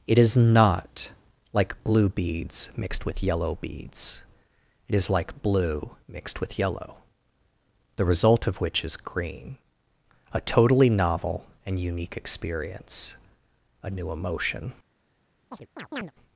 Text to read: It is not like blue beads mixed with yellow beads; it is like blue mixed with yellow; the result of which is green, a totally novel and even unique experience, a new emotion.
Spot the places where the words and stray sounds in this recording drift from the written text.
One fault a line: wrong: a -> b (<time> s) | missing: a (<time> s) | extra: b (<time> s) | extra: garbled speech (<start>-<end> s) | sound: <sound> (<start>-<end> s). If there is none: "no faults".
missing: even (11.8 s)
sound: chirp (15.5-16.1 s)